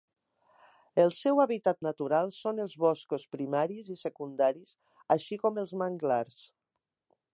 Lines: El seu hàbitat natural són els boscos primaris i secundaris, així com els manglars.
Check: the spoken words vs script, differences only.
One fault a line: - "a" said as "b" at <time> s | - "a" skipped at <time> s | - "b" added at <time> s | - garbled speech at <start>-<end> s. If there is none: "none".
none